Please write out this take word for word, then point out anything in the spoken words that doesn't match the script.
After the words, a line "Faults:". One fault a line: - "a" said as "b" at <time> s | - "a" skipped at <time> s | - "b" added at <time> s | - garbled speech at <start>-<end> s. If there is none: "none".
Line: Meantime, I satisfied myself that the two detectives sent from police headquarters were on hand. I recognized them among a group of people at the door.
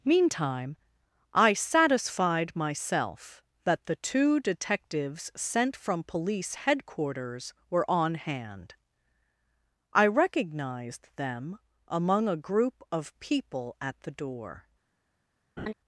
Meantime, I satisfied myself that the two detectives sent from police headquarters were on hand. I recognized them among a group of people at the door.
Faults:
none